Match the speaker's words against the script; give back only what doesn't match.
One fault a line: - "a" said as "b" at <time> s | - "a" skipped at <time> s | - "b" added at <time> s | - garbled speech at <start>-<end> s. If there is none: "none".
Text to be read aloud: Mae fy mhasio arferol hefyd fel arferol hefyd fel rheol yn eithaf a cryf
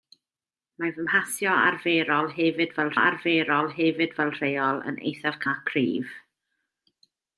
none